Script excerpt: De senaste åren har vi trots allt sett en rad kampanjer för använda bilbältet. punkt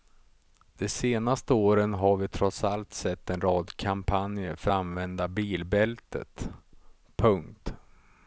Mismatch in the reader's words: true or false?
false